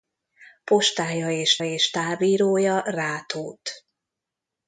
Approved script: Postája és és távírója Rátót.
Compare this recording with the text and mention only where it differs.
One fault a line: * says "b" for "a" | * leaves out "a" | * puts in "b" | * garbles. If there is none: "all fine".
all fine